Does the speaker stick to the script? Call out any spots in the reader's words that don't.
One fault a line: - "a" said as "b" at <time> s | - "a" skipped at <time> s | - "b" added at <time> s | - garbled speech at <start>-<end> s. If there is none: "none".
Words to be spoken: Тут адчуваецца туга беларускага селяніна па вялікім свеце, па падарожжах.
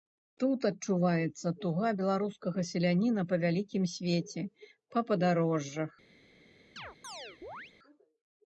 none